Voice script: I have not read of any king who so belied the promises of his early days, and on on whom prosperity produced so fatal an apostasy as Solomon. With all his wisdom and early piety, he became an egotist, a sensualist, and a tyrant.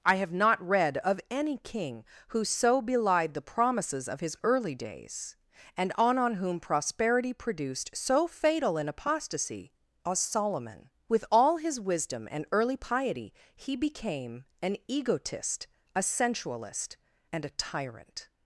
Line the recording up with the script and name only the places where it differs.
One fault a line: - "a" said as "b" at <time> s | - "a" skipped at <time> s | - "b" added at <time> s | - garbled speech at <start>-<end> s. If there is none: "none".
none